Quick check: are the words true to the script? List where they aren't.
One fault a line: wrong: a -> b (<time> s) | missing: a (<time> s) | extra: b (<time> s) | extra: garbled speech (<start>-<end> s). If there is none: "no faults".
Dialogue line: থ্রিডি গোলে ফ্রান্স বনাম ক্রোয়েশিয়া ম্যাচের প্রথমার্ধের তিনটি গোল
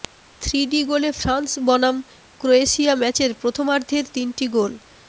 no faults